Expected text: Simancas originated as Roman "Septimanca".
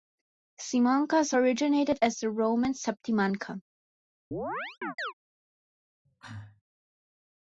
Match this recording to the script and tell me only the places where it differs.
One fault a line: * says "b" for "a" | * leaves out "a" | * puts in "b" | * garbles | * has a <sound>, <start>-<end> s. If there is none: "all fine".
* puts in "the"
* has a chirp, 4.3-5.1 s
* has a cough, 6.0-6.6 s